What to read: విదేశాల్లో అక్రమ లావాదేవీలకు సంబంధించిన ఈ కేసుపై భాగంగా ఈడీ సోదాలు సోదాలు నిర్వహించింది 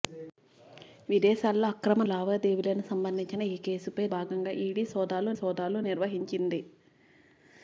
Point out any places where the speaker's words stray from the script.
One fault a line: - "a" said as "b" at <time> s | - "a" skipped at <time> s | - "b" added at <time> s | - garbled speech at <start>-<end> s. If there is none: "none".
none